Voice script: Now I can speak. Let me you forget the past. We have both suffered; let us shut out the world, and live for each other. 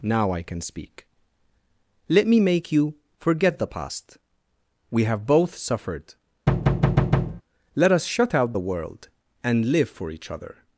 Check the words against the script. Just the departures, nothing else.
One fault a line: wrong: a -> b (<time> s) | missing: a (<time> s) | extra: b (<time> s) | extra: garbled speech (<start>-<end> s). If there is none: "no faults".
extra: make (2.4 s)